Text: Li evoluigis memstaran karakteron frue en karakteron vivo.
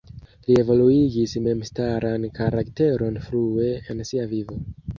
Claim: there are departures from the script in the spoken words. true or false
true